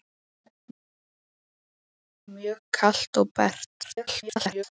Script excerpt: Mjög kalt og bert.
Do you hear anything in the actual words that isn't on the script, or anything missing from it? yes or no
yes